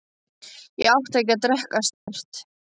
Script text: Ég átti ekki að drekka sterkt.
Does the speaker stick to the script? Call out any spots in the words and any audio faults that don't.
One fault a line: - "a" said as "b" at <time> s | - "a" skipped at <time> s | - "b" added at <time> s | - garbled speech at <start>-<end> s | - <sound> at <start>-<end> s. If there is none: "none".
- dropout at 1.9-2.1 s